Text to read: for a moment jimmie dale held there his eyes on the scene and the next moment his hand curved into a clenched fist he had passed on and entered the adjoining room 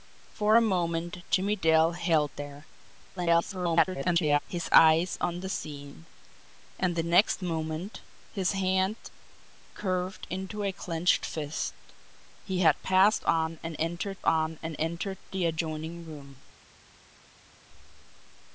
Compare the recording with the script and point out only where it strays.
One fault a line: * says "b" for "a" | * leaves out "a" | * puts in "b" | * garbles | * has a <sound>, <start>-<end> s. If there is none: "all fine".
* garbles
* puts in "on and entered"